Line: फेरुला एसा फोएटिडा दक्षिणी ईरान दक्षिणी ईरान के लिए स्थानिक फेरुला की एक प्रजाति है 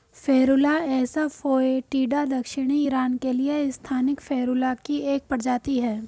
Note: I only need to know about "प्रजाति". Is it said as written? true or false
true